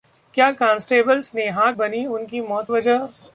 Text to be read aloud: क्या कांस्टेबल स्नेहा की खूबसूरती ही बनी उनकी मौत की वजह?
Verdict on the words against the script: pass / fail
fail